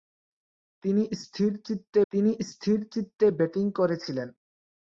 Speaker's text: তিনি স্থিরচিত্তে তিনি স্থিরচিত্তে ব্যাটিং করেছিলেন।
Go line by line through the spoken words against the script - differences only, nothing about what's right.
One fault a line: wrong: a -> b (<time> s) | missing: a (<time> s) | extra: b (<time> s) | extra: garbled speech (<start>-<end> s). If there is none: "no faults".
no faults